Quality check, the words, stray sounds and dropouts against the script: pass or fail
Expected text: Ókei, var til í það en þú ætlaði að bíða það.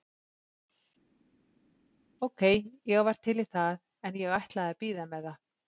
fail